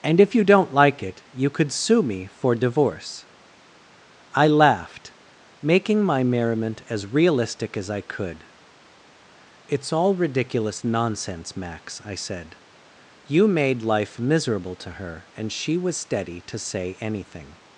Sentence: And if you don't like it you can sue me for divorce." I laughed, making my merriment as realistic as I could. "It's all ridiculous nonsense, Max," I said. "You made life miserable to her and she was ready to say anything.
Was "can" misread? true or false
true